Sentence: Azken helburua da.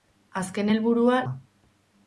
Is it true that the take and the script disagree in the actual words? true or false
false